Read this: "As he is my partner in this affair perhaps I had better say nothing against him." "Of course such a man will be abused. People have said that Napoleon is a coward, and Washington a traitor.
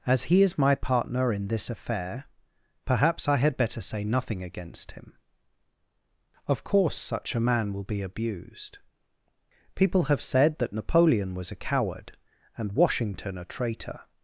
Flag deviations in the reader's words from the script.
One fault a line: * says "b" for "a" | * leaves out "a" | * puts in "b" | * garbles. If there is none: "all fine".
* says "was" for "is"